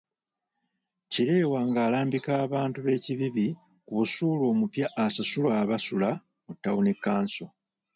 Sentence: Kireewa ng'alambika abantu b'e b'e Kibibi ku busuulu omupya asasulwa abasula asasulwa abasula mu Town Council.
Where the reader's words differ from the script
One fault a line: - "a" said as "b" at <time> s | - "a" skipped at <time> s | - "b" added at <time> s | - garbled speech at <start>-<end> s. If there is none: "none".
- "b'e" skipped at 3.0 s
- "asasulwa abasula" skipped at 6.1 s